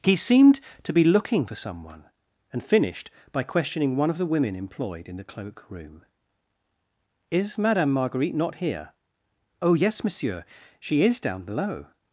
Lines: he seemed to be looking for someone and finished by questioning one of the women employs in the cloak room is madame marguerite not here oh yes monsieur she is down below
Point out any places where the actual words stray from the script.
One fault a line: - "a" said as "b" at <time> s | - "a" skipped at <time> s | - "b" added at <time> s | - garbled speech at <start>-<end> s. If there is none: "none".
- "employs" said as "employed" at 4.5 s